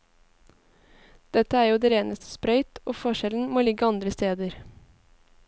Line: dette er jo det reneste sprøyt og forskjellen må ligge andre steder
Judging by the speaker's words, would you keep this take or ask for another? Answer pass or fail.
pass